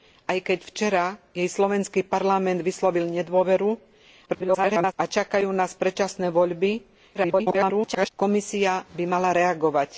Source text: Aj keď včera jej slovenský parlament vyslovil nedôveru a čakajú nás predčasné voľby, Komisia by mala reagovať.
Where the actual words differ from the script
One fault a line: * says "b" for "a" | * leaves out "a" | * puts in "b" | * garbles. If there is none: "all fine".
* garbles
* garbles